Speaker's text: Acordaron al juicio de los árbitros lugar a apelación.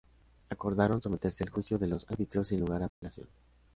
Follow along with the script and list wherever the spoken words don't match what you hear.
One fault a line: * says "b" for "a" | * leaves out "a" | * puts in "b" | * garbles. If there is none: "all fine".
* puts in "someterse"
* puts in "sin"